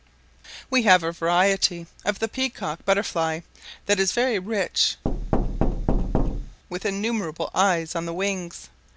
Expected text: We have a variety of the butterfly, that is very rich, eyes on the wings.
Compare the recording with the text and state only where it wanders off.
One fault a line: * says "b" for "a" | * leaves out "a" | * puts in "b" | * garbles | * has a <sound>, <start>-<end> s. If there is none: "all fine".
* puts in "peacock"
* has a thud, 5.0-6.6 s
* puts in "with innumerable"